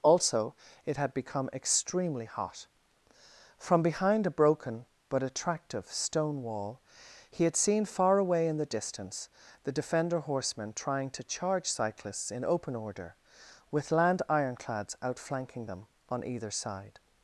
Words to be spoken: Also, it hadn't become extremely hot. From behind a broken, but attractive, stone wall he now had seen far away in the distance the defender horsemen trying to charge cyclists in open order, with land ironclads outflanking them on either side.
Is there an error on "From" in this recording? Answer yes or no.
no